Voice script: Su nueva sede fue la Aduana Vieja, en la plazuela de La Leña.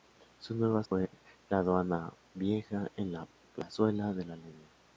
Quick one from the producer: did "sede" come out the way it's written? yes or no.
no